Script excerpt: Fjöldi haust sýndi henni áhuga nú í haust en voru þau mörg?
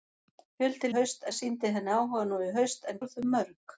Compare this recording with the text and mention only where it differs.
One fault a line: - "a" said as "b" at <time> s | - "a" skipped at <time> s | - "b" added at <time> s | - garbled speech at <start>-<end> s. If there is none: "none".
none